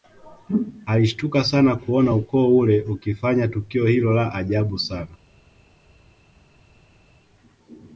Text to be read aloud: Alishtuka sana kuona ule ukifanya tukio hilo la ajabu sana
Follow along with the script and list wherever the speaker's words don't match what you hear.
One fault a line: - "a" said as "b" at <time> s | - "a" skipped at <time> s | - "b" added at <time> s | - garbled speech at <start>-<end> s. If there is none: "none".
- "ukoo" added at 2.1 s